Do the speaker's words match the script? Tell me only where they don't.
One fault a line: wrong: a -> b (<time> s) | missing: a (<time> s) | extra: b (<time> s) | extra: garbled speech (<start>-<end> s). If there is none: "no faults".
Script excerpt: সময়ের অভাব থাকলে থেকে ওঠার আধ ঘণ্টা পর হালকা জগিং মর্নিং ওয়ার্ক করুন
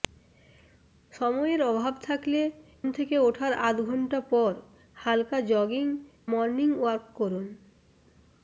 no faults